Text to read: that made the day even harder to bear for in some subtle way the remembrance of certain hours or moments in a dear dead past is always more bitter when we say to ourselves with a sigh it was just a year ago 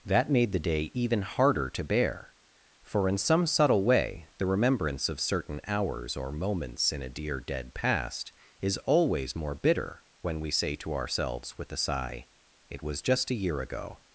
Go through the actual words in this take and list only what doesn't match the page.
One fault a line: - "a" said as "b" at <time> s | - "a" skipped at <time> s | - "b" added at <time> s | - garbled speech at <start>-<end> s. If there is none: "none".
none